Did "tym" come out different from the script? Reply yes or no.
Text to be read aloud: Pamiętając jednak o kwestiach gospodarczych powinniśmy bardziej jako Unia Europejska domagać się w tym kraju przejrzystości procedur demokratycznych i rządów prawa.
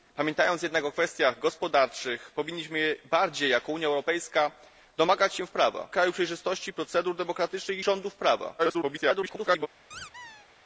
yes